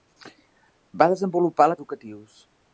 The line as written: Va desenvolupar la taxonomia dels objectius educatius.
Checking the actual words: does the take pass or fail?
fail